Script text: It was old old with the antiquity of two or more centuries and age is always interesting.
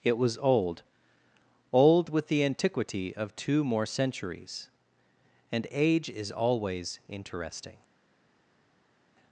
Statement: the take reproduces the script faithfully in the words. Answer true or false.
false